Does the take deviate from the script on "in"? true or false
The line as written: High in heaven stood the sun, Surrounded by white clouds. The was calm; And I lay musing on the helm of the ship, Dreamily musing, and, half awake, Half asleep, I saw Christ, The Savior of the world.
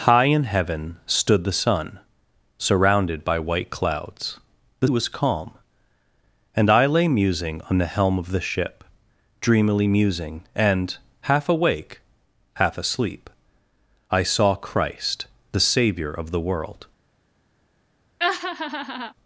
false